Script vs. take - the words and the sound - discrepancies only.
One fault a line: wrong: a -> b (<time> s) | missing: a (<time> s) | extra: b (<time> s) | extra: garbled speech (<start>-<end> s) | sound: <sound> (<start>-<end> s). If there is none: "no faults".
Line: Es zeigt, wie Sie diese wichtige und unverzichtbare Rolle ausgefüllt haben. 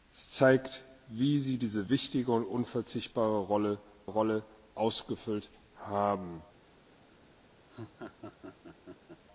extra: Rolle (4.1 s)
sound: laugh (7.7-9.2 s)